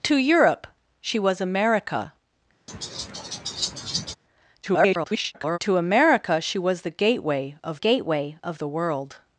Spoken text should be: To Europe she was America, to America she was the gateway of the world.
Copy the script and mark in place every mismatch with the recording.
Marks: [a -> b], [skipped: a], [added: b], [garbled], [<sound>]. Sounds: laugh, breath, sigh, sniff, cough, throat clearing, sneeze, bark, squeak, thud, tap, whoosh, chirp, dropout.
To Europe she was America, [laugh] [garbled] to America she was the gateway of [added: gateway of] the world.